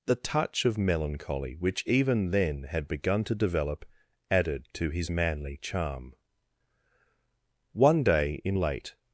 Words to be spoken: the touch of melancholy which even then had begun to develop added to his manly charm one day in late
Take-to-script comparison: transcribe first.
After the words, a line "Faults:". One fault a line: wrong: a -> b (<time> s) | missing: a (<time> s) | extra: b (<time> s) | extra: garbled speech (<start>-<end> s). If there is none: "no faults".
the touch of melancholy which even then had begun to develop added to his manly charm one day in late
Faults:
no faults